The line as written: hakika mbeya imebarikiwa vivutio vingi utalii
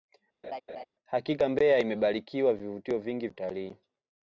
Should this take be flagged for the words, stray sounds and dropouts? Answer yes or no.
yes